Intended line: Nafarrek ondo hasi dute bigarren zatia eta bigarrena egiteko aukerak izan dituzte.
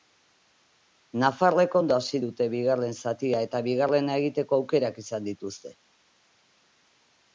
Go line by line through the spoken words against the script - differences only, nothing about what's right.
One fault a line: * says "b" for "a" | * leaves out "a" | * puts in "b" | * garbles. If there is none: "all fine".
all fine